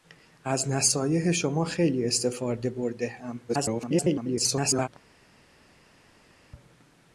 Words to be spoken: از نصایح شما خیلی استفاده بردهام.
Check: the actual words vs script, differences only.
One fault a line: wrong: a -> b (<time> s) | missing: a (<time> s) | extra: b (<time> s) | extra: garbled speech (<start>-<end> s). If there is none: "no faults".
extra: garbled speech (3.5-4.9 s)